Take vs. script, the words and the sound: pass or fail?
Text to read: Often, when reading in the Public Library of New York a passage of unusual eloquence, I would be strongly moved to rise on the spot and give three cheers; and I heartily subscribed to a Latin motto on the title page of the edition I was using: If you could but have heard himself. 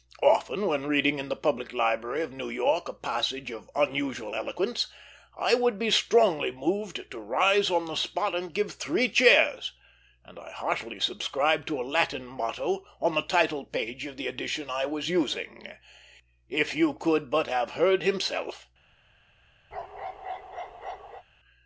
fail